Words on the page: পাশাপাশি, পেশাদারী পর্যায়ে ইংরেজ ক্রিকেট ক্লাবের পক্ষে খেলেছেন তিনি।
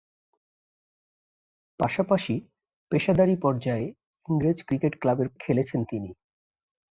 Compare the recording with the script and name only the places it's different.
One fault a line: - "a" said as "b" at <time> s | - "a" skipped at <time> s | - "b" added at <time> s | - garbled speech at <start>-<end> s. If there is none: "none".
- "পক্ষে" skipped at 5.3 s